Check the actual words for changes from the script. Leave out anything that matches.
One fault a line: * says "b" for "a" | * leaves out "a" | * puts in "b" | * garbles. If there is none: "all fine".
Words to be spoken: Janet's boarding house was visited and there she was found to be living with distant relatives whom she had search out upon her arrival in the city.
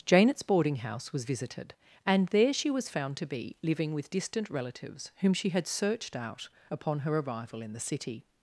* says "searched" for "search"